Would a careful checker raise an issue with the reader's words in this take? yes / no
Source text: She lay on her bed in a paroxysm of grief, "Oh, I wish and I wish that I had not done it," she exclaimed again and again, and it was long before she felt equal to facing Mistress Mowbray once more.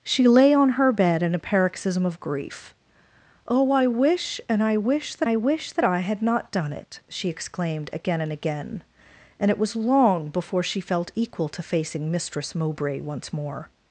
yes